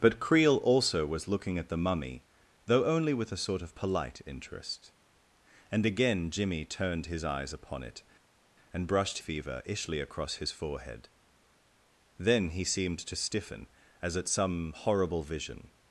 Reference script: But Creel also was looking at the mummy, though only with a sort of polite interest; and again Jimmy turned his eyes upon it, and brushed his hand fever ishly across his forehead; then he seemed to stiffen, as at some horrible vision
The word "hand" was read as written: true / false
false